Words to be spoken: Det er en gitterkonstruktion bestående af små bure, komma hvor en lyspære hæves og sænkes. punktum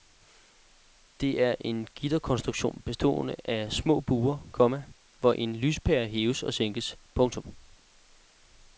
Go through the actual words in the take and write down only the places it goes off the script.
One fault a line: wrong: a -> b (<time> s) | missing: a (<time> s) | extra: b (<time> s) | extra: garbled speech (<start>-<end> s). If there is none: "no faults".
no faults